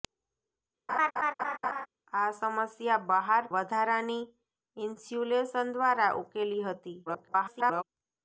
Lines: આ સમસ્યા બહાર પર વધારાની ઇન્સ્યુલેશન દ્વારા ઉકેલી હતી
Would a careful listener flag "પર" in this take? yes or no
yes